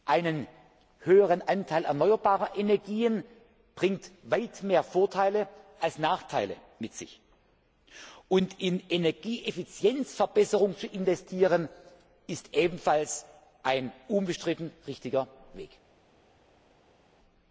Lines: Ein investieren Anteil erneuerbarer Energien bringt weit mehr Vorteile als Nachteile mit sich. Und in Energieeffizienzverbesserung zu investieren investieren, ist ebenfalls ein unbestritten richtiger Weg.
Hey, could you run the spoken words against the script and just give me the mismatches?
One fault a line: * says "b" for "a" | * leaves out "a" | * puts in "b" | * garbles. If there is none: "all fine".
* says "höherer" for "investieren"
* leaves out "investieren"